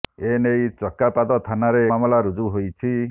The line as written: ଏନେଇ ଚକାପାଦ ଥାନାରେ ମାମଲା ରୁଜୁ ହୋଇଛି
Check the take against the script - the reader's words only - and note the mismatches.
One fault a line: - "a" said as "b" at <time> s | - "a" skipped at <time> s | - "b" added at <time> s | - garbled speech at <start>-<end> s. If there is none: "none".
none